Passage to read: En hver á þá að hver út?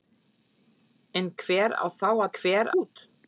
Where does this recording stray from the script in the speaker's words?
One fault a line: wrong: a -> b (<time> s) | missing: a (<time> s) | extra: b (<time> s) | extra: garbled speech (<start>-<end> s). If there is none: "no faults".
no faults